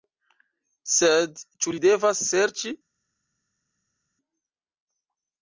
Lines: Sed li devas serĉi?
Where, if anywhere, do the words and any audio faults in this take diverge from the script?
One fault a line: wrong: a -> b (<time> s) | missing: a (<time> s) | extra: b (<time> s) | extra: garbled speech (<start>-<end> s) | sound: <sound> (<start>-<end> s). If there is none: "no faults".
extra: ĉu (1.6 s)